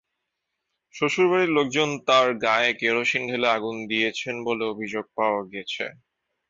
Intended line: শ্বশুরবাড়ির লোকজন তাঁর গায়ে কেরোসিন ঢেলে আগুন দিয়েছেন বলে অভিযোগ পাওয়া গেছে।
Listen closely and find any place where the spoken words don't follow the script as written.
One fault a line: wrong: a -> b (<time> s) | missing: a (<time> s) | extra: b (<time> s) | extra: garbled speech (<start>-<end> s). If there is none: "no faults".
no faults